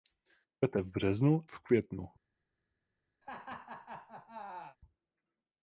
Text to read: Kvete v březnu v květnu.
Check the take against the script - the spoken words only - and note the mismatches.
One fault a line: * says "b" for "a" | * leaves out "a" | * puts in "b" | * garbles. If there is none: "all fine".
all fine